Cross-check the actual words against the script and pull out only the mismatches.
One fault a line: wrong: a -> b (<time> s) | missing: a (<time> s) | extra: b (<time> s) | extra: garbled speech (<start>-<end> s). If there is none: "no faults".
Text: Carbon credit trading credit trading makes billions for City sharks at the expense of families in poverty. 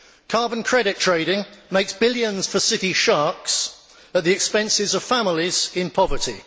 missing: credit trading (1.4 s)